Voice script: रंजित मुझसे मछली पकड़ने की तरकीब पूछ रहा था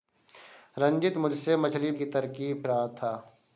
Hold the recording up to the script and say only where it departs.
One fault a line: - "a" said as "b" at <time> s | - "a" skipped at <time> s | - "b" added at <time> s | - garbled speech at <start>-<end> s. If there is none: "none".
- "पकड़ने" skipped at 1.9 s
- "पूछ" skipped at 2.6 s